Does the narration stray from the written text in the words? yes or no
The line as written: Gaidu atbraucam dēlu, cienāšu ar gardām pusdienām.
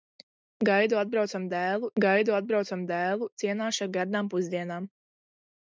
yes